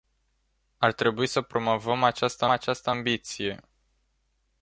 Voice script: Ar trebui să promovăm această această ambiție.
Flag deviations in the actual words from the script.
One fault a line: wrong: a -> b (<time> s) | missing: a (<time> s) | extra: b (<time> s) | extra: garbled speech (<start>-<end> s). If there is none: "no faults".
no faults